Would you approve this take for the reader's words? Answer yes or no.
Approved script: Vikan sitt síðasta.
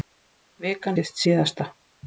yes